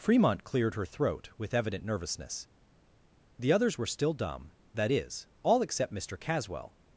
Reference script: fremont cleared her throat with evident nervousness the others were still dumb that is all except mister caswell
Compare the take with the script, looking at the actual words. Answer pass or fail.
pass